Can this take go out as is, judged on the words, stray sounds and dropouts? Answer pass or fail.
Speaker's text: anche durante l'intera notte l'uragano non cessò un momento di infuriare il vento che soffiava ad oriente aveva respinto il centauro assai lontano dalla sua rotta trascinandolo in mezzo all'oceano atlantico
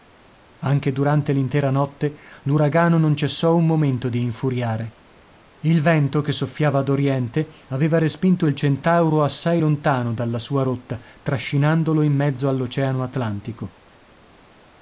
pass